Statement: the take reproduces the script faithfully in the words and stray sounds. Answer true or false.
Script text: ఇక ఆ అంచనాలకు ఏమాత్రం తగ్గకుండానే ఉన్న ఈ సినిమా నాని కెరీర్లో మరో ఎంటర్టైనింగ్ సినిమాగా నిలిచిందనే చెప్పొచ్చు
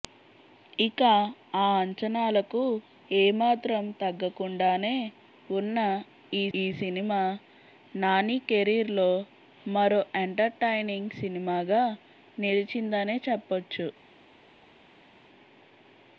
false